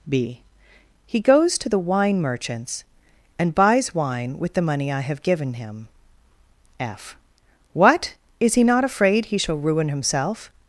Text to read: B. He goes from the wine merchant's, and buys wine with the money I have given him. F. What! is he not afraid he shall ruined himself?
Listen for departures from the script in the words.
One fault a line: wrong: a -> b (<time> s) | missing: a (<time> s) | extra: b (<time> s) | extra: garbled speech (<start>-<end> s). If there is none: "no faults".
wrong: from -> to (1.6 s)
wrong: ruined -> ruin (9.6 s)